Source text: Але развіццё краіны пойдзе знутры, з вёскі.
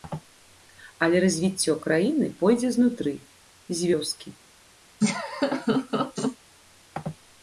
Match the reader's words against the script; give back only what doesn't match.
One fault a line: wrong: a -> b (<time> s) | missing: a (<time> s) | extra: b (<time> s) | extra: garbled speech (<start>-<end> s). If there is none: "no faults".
no faults